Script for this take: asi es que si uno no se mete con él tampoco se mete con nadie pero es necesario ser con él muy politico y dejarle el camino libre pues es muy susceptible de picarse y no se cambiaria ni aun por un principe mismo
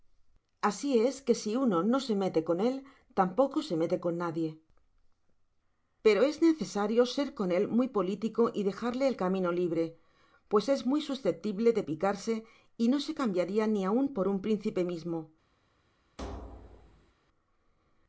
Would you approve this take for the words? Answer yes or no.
yes